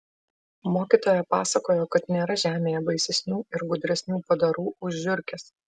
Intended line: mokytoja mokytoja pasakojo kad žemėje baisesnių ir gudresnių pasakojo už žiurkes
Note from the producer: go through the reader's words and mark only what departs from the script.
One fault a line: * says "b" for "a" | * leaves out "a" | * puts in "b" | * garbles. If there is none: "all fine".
* leaves out "mokytoja"
* puts in "nėra"
* says "padarų" for "pasakojo"